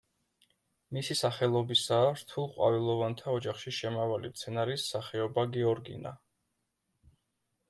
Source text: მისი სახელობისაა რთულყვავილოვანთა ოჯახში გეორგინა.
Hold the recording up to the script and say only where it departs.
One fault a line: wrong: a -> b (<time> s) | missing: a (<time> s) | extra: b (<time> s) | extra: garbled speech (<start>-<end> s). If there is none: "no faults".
extra: შემავალი მცენარის სახეობა (3.8 s)